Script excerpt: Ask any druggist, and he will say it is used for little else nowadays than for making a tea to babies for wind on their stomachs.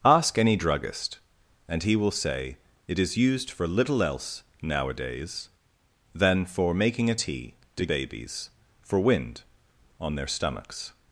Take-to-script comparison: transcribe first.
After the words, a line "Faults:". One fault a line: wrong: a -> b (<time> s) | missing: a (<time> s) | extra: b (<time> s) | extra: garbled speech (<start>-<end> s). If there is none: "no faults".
Ask any druggist, and he will say it is used for little else nowadays than for making a tea to babies for wind on their stomachs.
Faults:
no faults